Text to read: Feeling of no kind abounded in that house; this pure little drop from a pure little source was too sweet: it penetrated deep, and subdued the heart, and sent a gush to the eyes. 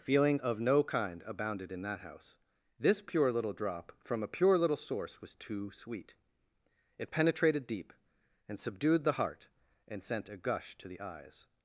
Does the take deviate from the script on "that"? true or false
false